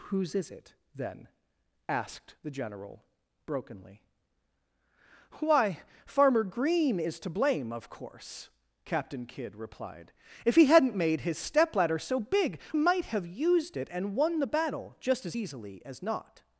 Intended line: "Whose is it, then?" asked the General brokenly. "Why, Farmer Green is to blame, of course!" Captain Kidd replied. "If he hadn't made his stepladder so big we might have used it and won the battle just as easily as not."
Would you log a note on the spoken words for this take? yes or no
yes